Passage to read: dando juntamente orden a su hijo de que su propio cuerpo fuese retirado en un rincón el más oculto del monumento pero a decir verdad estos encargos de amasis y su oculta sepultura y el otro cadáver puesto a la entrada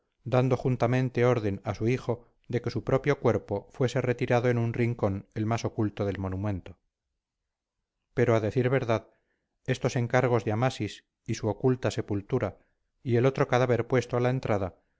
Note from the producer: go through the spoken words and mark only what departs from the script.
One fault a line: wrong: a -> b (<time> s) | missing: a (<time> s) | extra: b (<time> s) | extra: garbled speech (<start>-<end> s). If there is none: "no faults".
no faults